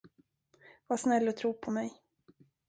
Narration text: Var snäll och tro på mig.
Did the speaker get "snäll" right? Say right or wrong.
right